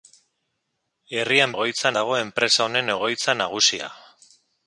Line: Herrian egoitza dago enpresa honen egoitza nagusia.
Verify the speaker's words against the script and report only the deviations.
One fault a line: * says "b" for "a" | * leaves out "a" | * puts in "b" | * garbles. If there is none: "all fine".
all fine